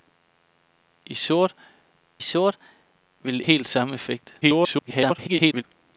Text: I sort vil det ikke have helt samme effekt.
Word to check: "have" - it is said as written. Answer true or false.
false